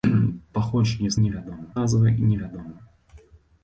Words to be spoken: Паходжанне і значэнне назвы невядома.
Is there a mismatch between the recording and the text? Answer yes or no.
yes